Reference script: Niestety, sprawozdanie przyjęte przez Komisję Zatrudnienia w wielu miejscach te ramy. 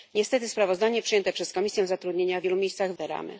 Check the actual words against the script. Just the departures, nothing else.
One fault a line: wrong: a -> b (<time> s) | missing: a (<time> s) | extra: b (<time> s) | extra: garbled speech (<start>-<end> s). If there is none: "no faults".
no faults